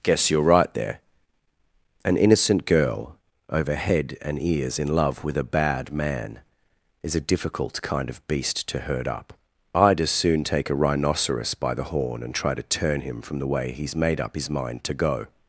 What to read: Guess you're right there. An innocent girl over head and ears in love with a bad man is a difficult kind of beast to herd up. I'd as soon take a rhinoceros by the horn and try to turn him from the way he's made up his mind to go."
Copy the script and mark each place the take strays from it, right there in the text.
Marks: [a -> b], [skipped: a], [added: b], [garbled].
Guess you're right there. An innocent girl over head and ears in love with a bad man is a difficult kind of beast to herd up. I'd as soon take a rhinoceros by the horn and try to turn him from the way he's made up his mind to go."